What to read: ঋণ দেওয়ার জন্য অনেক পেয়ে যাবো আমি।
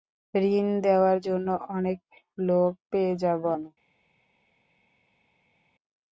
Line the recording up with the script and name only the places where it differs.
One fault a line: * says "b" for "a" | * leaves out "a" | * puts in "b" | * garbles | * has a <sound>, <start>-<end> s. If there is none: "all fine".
* puts in "লোক"